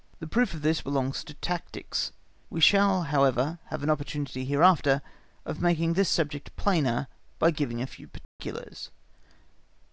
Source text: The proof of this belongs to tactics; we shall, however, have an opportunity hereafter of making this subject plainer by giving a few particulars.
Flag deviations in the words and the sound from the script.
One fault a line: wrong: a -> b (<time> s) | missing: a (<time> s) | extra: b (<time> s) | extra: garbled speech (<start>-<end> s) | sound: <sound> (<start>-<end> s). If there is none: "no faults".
sound: dropout (8.2-8.4 s)